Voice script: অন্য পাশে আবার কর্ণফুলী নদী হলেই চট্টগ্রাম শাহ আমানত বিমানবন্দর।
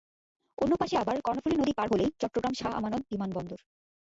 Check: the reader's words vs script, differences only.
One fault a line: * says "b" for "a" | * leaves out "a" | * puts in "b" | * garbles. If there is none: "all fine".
* puts in "পার"